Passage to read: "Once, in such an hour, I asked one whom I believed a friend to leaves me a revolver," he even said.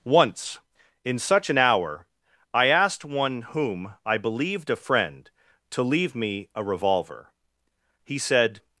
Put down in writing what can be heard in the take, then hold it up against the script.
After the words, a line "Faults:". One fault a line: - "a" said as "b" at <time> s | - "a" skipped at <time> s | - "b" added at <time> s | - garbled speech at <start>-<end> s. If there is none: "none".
"Once, in such an hour, I asked one whom I believed a friend to leave me a revolver," he said.
Faults:
- "leaves" said as "leave" at 5.8 s
- "even" skipped at 8.2 s